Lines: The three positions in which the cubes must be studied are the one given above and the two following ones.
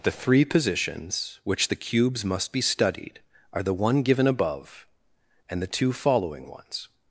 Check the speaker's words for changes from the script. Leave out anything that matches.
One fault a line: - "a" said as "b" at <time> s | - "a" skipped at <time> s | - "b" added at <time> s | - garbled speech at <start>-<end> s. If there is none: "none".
- "in" skipped at 1.4 s